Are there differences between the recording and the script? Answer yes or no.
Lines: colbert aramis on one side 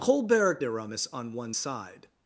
no